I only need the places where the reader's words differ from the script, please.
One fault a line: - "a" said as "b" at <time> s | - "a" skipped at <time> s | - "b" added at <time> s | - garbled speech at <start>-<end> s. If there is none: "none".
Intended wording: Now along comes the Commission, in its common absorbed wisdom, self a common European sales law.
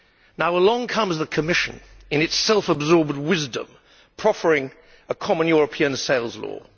- "common" said as "self" at 2.4 s
- "self" said as "proffering" at 4.2 s